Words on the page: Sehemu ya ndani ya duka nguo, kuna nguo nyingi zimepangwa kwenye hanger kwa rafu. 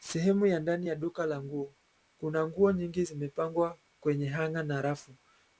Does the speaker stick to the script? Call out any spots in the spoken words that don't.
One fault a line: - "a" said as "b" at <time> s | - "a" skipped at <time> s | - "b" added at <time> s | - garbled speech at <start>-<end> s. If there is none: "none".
- "la" added at 1.3 s
- "kwa" said as "na" at 4.6 s